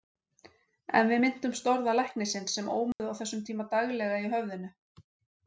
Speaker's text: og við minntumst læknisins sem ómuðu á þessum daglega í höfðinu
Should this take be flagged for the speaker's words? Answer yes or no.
yes